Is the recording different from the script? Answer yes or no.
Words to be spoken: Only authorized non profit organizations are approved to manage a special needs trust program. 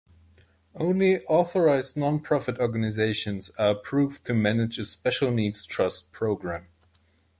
no